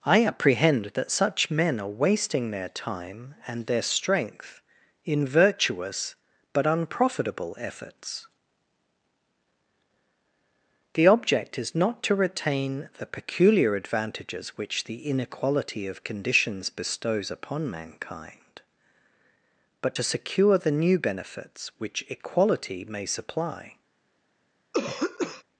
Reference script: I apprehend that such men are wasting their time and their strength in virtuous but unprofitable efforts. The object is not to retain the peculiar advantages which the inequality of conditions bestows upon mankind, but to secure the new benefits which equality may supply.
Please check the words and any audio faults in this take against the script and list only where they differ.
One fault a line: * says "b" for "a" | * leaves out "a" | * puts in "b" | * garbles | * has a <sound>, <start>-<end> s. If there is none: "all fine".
* has a throat clearing, 24.7-25.4 s